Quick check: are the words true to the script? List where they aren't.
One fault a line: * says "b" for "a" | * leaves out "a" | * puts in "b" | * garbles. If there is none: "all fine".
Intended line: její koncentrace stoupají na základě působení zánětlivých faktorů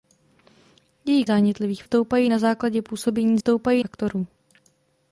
* says "zánětlivých" for "koncentrace"
* says "stoupají" for "zánětlivých"